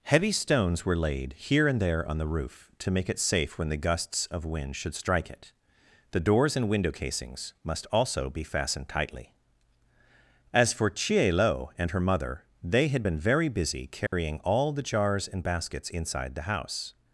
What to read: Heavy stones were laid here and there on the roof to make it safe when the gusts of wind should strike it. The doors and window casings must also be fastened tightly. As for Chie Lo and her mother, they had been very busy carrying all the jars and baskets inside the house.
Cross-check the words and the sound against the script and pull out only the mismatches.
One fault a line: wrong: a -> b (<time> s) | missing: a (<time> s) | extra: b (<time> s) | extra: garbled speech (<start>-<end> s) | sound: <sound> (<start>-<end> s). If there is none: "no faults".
sound: dropout (14.1-14.1 s)